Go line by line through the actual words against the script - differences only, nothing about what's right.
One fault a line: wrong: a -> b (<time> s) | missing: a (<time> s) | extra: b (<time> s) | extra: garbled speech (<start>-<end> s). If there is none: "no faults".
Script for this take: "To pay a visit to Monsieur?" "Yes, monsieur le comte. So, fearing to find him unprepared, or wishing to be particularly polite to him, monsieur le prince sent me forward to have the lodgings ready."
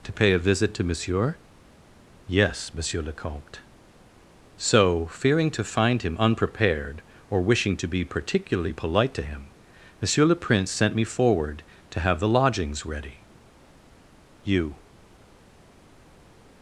extra: You (14.4 s)